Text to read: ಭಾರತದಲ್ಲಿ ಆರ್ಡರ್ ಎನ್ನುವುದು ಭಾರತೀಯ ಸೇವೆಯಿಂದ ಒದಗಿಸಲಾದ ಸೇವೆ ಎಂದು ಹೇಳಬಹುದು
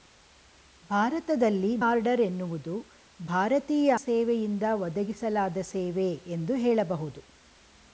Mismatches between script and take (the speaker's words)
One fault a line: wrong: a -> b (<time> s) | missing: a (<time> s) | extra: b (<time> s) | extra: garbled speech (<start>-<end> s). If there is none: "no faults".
no faults